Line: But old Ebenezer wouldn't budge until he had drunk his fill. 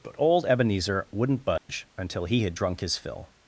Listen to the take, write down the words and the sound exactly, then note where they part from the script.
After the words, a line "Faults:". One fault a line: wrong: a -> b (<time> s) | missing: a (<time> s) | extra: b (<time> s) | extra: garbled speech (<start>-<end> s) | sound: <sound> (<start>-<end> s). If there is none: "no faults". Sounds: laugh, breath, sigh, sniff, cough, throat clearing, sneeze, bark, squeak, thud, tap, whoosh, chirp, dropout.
But old Ebenezer wouldn't budge until he had drunk his fill.
Faults:
sound: dropout (1.6-1.7 s)